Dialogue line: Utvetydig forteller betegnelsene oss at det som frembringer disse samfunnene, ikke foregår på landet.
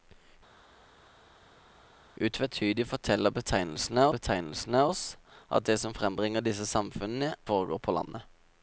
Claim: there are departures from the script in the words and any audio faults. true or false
true